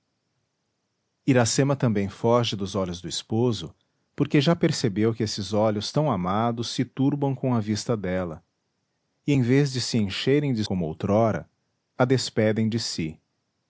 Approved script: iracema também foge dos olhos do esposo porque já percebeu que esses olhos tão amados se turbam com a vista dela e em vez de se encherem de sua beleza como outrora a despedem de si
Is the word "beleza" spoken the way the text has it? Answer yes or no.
no